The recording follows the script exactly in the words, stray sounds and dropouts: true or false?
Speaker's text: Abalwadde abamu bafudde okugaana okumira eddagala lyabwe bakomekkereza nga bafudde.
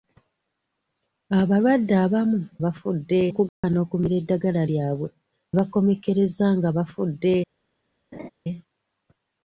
false